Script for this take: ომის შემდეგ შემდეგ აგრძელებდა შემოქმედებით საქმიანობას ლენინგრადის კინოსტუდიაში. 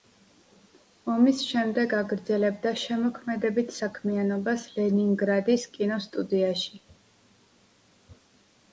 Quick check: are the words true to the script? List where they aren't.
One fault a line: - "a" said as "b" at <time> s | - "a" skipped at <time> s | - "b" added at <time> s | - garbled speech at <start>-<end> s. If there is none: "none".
- "შემდეგ" skipped at 1.9 s